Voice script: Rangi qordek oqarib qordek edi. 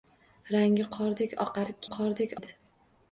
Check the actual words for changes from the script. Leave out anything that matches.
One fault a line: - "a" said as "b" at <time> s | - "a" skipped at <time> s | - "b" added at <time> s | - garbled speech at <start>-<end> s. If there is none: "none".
none